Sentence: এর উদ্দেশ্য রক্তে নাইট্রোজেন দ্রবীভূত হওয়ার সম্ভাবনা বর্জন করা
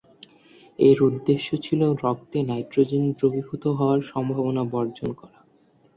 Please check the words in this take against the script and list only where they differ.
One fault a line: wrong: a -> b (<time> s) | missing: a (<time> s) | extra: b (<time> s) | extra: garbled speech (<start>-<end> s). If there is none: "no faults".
extra: ছিল (1.6 s)